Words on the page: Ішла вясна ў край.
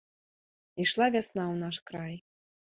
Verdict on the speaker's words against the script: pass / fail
fail